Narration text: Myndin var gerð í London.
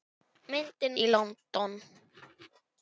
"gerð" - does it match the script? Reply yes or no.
no